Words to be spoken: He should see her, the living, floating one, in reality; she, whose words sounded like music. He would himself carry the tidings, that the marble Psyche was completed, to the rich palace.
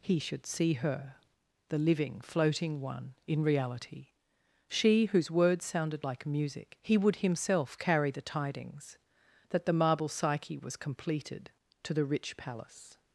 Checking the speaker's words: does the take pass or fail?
pass